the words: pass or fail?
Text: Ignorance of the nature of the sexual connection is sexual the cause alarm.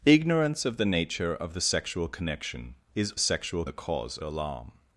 pass